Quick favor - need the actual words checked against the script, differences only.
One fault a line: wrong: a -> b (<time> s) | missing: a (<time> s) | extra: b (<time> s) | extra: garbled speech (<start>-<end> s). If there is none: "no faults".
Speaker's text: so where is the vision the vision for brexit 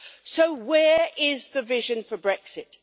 missing: the vision (2.0 s)